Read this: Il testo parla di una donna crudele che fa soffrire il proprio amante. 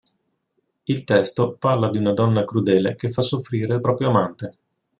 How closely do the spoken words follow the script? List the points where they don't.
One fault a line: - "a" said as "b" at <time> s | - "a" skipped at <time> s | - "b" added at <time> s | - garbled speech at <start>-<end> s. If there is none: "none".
none